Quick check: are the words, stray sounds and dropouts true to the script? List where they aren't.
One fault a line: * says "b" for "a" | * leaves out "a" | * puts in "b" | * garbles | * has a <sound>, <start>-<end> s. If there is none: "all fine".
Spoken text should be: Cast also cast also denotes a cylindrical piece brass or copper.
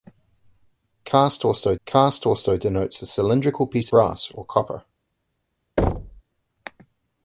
* has a thud, 5.8-6.2 s